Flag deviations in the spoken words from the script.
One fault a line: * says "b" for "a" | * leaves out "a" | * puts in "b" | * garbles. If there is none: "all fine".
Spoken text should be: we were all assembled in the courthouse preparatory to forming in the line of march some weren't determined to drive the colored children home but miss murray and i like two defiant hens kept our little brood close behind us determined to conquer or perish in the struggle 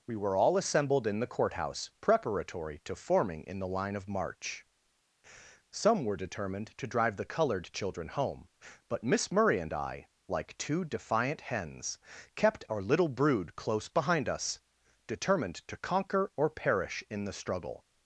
* says "were" for "weren't"